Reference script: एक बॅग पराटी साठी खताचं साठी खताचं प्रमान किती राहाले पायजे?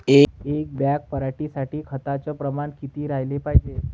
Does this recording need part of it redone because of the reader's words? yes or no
yes